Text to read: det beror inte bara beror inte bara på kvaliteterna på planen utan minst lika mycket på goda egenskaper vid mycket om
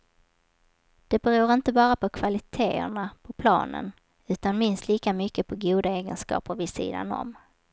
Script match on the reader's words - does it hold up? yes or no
no